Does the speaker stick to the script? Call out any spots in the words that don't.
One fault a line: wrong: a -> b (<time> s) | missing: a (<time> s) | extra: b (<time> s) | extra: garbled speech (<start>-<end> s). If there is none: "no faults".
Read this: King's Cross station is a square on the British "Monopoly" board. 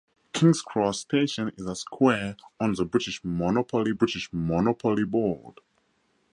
extra: British Monopoly (3.9 s)